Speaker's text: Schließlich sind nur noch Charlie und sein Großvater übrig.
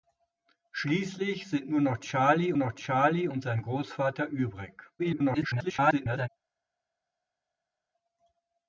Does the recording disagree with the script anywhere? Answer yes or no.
yes